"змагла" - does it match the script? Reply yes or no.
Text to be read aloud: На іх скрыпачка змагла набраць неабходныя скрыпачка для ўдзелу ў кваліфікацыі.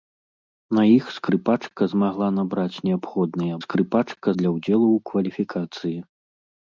yes